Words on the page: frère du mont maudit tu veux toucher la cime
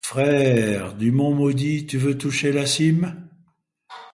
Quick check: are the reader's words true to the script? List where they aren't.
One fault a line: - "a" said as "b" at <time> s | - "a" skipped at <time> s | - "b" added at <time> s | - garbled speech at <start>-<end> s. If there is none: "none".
none